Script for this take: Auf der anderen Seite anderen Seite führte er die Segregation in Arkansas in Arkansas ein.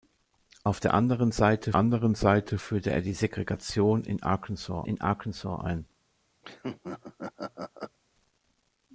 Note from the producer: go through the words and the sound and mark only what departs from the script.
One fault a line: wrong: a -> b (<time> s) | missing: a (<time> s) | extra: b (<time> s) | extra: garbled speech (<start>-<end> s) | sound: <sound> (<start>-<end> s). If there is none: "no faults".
sound: laugh (6.4-8.0 s)